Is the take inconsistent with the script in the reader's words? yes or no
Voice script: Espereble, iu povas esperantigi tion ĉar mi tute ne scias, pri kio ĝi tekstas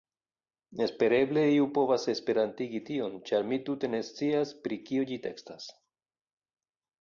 no